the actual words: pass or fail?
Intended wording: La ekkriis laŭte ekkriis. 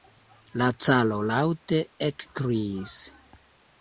fail